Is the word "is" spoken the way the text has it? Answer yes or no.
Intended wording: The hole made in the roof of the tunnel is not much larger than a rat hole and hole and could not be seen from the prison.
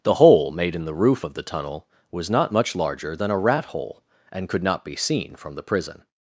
no